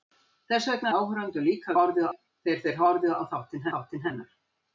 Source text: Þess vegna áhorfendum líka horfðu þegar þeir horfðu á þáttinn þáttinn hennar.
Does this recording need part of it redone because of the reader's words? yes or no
no